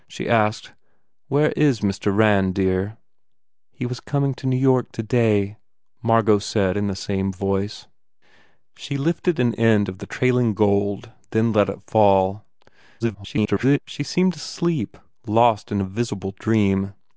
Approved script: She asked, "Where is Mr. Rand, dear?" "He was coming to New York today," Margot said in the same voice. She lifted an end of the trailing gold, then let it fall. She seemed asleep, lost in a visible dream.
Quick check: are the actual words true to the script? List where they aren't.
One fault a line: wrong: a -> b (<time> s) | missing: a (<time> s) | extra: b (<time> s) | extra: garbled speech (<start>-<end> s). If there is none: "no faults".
extra: garbled speech (13.0-13.8 s)